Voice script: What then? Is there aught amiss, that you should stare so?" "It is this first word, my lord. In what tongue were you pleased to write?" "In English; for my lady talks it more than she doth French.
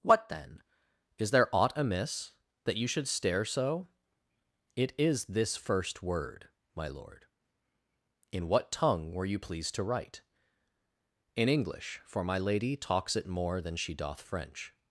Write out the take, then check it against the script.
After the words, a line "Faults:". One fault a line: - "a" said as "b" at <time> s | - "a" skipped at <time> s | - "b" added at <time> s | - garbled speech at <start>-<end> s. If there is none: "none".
What then? Is there aught amiss, that you should stare so?" "It is this first word, my lord. In what tongue were you pleased to write?" "In English; for my lady talks it more than she doth French.
Faults:
none